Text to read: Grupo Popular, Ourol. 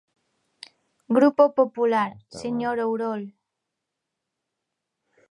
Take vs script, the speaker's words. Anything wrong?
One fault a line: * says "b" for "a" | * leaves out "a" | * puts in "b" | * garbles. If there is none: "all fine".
* puts in "señor"